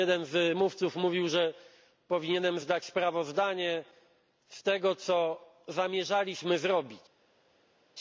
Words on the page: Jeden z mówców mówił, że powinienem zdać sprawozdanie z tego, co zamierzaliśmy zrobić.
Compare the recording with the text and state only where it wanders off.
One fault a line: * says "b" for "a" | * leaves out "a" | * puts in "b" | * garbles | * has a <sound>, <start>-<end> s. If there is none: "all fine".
all fine